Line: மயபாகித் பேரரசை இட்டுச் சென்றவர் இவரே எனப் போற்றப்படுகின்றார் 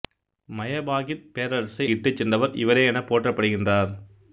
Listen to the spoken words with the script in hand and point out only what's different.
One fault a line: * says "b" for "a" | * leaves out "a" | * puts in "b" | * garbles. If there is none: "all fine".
all fine